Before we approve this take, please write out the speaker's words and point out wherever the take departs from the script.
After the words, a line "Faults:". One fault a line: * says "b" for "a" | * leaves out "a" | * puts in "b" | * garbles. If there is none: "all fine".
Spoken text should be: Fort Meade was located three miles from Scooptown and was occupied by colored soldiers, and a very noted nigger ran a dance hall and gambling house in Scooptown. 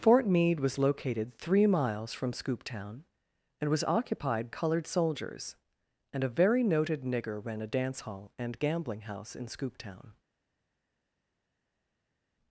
Fort Meade was located three miles from Scooptown and was occupied colored soldiers, and a very noted nigger ran a dance hall and gambling house in Scooptown.
Faults:
* leaves out "by"